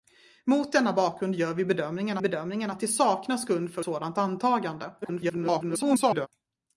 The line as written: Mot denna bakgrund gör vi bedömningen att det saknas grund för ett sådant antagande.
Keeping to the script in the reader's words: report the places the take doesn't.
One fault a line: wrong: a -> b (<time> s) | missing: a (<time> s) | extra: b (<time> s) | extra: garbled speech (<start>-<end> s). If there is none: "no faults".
extra: bedömningen (2.2 s)
missing: ett (3.8 s)
extra: garbled speech (5.0-6.3 s)